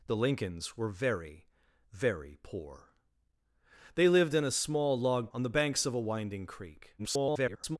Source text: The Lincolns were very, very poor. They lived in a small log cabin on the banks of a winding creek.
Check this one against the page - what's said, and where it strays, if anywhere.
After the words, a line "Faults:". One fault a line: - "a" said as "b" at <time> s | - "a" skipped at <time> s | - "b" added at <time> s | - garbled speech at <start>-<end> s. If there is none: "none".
The Lincolns were very, very poor. They lived in a small log on the banks of a winding creek. [garbled]
Faults:
- "cabin" skipped at 5.3 s
- garbled speech at 7.0-7.8 s